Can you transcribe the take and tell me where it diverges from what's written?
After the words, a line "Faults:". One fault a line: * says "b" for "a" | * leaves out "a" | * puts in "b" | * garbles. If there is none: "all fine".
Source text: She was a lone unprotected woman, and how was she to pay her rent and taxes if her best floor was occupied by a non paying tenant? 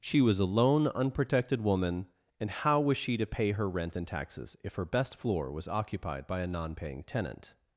She was a lone unprotected woman, and how was she to pay her rent and taxes if her best floor was occupied by a non paying tenant?
Faults:
all fine